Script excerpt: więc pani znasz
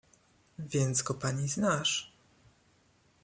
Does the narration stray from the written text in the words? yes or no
yes